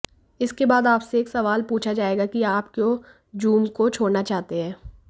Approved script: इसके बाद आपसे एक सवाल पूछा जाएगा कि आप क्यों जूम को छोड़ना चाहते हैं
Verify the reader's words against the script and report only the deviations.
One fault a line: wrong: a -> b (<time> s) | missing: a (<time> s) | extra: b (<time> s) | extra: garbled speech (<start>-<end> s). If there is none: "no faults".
no faults